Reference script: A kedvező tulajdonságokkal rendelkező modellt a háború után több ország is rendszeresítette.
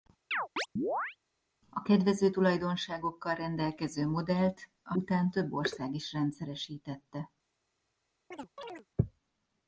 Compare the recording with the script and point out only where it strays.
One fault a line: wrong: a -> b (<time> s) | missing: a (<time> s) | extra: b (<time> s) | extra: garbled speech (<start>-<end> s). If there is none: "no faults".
missing: háború (4.9 s)